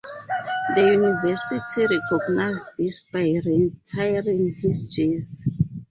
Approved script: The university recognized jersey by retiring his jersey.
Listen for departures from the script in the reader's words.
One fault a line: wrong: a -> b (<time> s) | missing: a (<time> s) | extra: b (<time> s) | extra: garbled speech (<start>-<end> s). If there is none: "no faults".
wrong: jersey -> this (2.8 s)